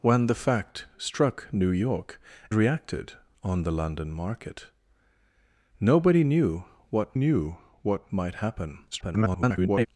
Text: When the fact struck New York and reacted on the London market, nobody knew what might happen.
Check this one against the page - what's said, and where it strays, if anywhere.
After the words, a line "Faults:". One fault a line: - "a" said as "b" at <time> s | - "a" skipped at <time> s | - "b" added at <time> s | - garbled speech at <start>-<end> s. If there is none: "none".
When the fact struck New York reacted on the London market, nobody knew what knew what might happen. [garbled]
Faults:
- "and" skipped at 2.2 s
- "knew what" added at 7.1 s
- garbled speech at 8.9-9.9 s